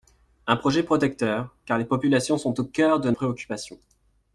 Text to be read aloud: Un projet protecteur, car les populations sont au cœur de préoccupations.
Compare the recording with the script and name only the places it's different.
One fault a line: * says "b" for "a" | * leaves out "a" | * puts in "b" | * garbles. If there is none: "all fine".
all fine